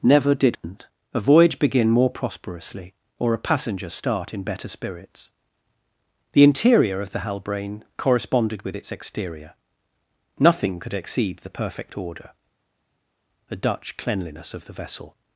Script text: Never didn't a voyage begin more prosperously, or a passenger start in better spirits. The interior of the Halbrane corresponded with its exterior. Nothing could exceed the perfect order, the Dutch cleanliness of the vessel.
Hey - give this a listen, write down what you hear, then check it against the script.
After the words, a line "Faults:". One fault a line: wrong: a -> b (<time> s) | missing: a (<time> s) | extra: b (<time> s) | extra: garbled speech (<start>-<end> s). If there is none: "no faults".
Never didn't a voyage begin more prosperously, or a passenger start in better spirits. The interior of the Halbrane corresponded with its exterior. Nothing could exceed the perfect order, the Dutch cleanliness of the vessel.
Faults:
no faults